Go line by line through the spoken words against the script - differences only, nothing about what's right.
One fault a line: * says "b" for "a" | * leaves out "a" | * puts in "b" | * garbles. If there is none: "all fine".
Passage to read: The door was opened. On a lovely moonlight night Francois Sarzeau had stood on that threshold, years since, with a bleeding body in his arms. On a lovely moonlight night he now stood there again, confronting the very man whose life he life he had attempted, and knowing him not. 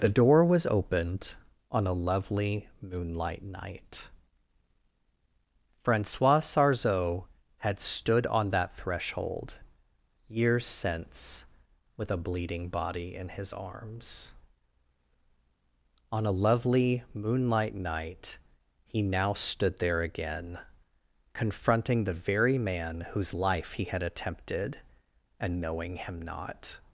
* leaves out "life he"